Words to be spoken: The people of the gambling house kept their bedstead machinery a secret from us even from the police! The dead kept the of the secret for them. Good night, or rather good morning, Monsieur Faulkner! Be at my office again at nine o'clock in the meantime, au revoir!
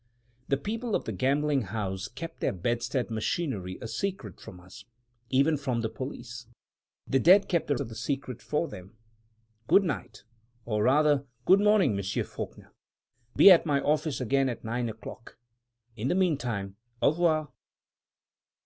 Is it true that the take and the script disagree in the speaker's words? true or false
false